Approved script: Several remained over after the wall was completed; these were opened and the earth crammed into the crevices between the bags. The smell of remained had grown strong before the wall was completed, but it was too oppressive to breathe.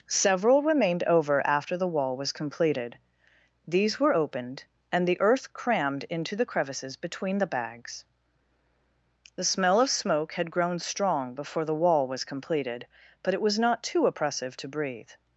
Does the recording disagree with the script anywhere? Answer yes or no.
yes